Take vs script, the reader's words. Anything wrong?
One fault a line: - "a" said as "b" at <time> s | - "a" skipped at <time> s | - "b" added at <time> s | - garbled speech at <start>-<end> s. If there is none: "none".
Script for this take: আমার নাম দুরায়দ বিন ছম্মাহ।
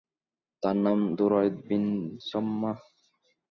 - "আমার" said as "তার" at 0.6 s